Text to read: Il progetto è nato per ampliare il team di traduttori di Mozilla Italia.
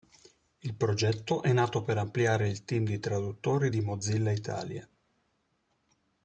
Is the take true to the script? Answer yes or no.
yes